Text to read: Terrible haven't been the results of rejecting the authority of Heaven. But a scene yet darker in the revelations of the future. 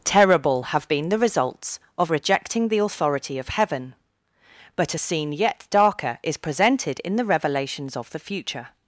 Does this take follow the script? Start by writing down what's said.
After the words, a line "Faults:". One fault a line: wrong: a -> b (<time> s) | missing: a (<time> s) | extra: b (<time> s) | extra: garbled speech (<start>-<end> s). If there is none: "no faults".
Terrible have been the results of rejecting the authority of Heaven. But a scene yet darker is presented in the revelations of the future.
Faults:
wrong: haven't -> have (0.6 s)
extra: is presented (6.2 s)